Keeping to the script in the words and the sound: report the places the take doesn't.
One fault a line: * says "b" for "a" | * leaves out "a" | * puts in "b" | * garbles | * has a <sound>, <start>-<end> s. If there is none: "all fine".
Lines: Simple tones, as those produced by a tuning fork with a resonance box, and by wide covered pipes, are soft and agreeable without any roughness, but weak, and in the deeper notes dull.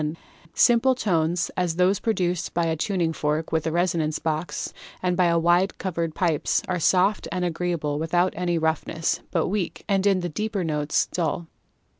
all fine